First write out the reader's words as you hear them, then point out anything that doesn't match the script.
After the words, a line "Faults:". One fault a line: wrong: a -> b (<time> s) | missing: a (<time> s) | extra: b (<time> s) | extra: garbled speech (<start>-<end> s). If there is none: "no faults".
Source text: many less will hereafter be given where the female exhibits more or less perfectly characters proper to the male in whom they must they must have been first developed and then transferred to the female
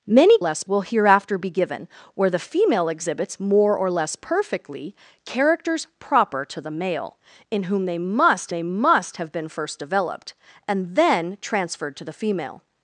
many less will hereafter be given where the female exhibits more or less perfectly characters proper to the male in whom they must they must have been first developed and then transferred to the female
Faults:
no faults